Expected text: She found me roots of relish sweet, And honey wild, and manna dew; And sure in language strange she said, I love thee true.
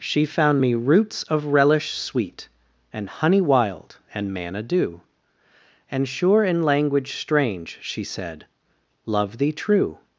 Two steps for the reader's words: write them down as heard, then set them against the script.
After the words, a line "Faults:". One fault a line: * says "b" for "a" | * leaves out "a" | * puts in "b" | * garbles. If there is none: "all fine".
She found me roots of relish sweet, And honey wild, and manna dew; And sure in language strange she said, love thee true.
Faults:
* leaves out "I"